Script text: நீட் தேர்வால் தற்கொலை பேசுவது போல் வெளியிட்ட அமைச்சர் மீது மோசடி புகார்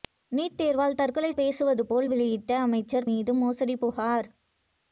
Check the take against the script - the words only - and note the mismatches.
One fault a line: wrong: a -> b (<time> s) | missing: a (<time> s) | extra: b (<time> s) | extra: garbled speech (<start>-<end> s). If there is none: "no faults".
no faults